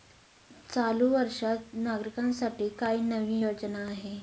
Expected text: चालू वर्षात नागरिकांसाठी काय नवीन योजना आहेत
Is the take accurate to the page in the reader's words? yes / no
yes